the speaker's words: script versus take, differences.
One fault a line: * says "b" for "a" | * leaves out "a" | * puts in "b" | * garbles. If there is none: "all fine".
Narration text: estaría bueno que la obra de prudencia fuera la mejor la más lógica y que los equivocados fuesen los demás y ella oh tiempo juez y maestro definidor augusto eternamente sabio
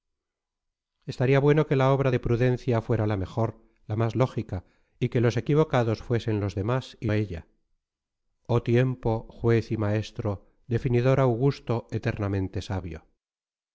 all fine